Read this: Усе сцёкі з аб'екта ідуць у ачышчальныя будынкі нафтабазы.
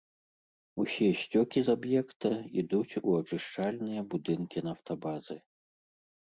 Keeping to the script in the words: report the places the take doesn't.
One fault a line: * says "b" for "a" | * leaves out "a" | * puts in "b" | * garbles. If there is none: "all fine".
all fine